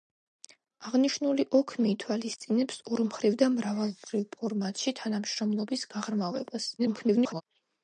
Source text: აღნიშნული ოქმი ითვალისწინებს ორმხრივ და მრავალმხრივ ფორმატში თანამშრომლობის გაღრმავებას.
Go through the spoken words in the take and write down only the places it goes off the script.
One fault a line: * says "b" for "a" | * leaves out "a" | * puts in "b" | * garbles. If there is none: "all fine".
* garbles